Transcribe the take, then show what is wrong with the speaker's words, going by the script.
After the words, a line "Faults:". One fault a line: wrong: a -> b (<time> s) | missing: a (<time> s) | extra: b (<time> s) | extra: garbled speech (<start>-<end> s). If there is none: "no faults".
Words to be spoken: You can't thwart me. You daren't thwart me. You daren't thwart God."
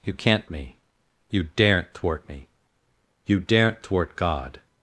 You can't me. You daren't thwart me. You daren't thwart God."
Faults:
missing: thwart (0.5 s)